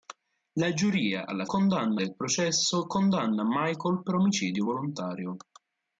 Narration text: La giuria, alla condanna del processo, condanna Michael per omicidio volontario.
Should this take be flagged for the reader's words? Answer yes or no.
no